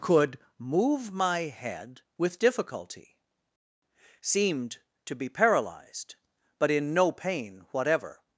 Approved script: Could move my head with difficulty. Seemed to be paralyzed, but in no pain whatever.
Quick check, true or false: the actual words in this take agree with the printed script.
true